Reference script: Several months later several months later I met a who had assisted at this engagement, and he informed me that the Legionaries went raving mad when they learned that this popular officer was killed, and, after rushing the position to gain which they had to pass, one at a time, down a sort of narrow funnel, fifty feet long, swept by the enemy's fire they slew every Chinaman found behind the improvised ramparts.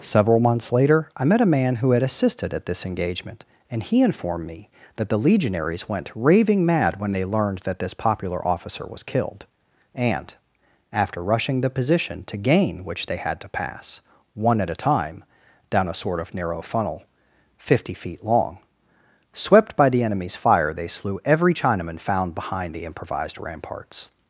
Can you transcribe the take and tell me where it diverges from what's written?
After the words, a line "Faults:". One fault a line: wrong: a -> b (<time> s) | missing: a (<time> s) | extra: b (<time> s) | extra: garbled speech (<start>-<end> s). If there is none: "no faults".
Several months later I met a man who had assisted at this engagement, and he informed me that the Legionaries went raving mad when they learned that this popular officer was killed, and, after rushing the position to gain which they had to pass, one at a time, down a sort of narrow funnel, fifty feet long, swept by the enemy's fire they slew every Chinaman found behind the improvised ramparts.
Faults:
missing: several months later (1.1 s)
extra: man (1.6 s)